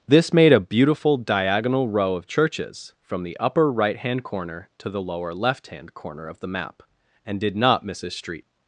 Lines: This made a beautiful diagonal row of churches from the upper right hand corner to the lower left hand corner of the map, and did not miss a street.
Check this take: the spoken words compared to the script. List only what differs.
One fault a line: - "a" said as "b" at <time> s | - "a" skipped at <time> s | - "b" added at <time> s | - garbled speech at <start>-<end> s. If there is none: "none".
none